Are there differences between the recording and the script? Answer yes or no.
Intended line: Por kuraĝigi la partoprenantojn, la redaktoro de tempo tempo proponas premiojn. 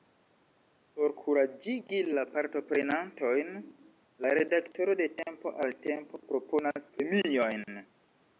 yes